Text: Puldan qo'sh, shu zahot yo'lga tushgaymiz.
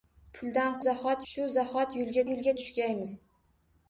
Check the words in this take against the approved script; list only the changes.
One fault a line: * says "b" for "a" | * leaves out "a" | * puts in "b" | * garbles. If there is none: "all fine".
* says "zahot" for "qo'sh"
* puts in "yo'lga"